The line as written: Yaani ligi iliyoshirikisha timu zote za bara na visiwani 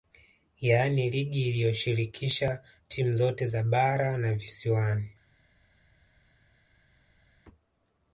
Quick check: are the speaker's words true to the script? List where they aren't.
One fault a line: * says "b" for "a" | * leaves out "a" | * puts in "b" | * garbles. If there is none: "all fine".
all fine